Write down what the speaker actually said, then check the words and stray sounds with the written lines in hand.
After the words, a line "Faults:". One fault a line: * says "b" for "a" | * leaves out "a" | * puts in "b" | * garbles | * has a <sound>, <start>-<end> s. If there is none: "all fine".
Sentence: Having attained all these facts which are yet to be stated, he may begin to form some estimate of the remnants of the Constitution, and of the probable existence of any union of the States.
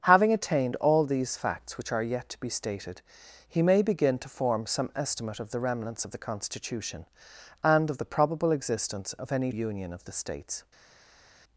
Having attained all these facts which are yet to be stated, he may begin to form some estimate of the remnants of the Constitution, and of the probable existence of any union of the States.
Faults:
all fine